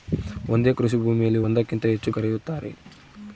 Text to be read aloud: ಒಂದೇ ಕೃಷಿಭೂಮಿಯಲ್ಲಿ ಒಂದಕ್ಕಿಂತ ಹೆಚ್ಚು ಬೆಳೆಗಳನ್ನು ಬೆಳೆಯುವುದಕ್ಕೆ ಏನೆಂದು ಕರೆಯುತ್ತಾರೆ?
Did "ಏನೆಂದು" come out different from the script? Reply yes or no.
yes